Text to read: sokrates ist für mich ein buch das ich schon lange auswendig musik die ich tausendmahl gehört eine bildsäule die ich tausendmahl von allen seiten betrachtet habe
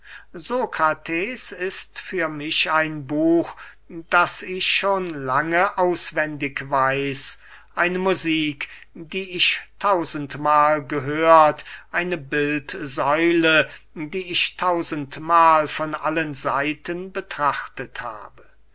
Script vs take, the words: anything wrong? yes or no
yes